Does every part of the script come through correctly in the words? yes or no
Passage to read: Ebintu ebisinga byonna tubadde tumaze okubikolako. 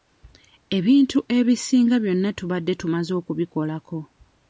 yes